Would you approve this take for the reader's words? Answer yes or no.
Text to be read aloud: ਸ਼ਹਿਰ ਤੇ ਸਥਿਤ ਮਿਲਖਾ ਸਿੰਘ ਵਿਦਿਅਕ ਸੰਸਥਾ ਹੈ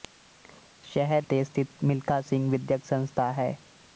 yes